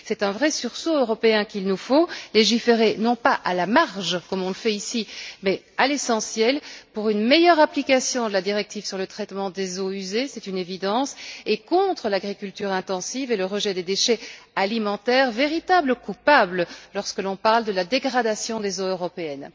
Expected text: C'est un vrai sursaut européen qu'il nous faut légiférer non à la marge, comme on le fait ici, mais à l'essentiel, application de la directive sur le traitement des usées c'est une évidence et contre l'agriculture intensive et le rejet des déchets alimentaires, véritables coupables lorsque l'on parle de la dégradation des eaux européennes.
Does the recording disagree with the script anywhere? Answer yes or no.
yes